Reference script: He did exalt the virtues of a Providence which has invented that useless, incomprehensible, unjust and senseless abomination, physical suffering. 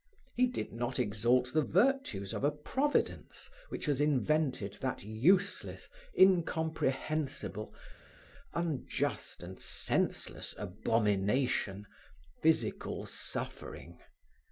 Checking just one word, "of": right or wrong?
right